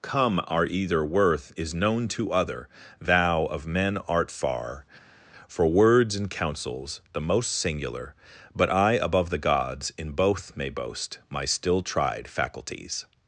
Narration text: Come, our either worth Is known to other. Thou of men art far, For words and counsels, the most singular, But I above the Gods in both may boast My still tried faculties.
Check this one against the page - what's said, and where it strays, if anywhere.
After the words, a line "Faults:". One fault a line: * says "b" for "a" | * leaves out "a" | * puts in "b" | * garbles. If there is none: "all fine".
Come, our either worth Is known to other. Thou of men art far, For words and counsels, the most singular, But I above the Gods in both may boast My still tried faculties.
Faults:
all fine